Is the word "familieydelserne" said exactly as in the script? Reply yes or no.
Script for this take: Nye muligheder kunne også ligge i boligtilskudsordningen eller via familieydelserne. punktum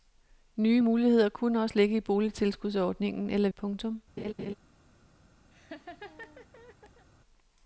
no